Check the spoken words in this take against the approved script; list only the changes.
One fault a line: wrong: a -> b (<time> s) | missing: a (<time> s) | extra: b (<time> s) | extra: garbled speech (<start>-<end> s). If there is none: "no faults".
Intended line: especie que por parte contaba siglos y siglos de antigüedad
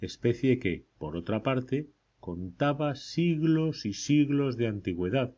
extra: otra (1.1 s)